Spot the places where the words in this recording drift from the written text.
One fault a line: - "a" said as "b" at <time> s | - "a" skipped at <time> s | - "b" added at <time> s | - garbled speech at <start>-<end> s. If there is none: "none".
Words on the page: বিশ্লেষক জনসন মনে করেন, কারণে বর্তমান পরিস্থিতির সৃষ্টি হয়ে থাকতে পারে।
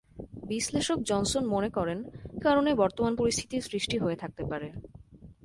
none